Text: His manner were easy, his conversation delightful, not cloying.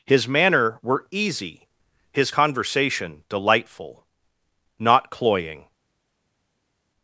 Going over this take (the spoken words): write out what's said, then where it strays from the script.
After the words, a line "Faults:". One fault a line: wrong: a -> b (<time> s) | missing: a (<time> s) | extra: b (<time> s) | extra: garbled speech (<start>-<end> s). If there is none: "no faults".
His manner were easy, his conversation delightful, not cloying.
Faults:
no faults